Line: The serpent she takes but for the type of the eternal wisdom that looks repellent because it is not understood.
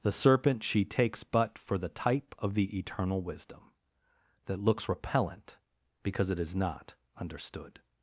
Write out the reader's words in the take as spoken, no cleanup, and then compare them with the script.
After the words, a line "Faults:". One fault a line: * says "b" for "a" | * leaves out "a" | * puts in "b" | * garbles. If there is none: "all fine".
The serpent she takes but for the type of the eternal wisdom that looks repellent because it is not understood.
Faults:
all fine